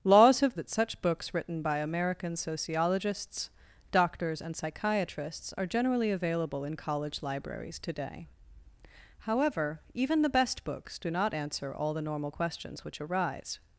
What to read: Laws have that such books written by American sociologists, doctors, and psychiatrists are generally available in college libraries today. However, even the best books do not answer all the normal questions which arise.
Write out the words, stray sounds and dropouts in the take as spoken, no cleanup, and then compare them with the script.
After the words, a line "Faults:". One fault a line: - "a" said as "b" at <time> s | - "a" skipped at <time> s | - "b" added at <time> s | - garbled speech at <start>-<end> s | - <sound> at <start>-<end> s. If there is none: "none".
Laws have that such books written by American sociologists, doctors, and psychiatrists are generally available in college libraries today. However, even the best books do not answer all the normal questions which arise.
Faults:
none